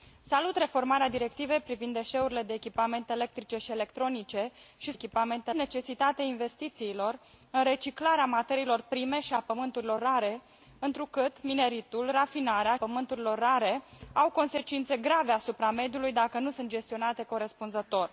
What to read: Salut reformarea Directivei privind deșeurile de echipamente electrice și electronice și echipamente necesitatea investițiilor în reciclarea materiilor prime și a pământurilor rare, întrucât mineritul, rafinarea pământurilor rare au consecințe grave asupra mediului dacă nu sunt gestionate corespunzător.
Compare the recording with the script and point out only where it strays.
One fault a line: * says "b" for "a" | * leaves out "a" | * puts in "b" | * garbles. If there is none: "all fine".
all fine